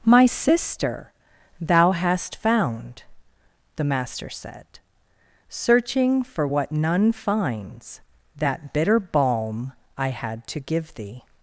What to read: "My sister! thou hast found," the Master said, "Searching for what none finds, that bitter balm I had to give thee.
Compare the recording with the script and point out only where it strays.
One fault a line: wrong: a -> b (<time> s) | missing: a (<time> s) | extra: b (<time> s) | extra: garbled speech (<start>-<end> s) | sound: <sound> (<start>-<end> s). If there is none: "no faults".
no faults